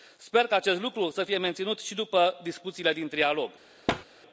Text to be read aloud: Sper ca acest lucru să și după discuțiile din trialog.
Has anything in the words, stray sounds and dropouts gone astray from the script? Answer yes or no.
yes